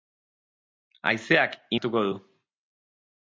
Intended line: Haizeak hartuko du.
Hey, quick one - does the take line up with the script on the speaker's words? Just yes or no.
yes